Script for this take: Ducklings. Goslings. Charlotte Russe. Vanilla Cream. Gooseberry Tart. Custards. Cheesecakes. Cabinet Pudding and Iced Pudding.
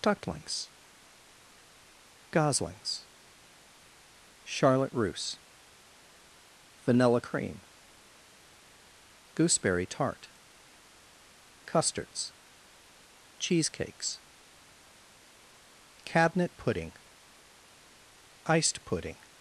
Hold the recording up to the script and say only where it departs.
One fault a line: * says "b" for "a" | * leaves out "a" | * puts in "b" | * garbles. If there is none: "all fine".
* leaves out "and"